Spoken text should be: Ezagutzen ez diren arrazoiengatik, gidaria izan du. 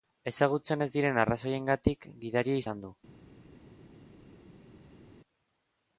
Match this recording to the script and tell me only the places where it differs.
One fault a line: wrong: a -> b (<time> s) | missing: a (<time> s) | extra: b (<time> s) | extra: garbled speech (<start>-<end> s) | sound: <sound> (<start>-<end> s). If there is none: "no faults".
no faults